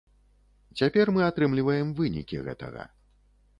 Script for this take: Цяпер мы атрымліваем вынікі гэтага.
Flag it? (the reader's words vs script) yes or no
no